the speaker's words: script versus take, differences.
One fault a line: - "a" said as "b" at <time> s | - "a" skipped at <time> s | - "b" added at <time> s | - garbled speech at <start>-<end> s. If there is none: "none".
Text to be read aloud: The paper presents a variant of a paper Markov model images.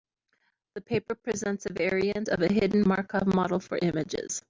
- "paper" said as "hidden" at 2.5 s
- "for" added at 3.6 s